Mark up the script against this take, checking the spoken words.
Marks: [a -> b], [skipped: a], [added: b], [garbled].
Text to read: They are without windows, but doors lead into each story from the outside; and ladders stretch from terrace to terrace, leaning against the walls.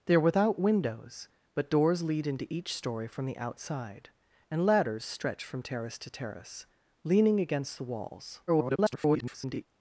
They are without windows, but doors lead into each story from the outside; and ladders stretch from terrace to terrace, leaning against the walls. [garbled]